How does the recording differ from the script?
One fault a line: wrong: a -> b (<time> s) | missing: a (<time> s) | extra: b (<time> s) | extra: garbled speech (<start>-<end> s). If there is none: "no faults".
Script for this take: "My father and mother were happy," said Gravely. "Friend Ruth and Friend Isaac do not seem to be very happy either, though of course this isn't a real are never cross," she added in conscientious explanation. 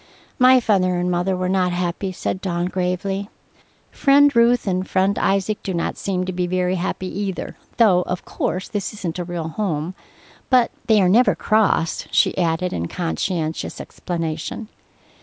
extra: not (1.5 s)
extra: Dawn (2.4 s)
extra: home But they (9.5 s)